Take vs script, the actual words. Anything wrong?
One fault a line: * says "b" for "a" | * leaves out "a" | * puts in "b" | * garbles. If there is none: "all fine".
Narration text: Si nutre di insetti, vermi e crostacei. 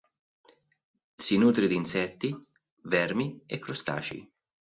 all fine